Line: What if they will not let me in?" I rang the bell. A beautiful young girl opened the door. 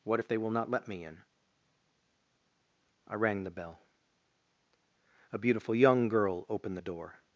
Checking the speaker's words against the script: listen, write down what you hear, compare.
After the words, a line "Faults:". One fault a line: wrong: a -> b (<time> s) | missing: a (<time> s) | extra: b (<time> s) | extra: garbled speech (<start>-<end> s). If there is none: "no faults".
What if they will not let me in?" I rang the bell. A beautiful young girl opened the door.
Faults:
no faults